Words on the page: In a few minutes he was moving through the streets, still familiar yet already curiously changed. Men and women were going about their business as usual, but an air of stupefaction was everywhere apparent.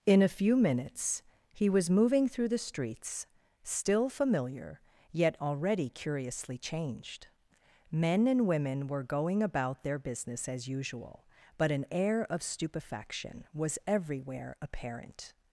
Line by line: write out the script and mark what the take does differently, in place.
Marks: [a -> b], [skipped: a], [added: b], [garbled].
In a few minutes he was moving through the streets, still familiar yet already curiously changed. Men and women were going about their business as usual, but an air of stupefaction was everywhere apparent.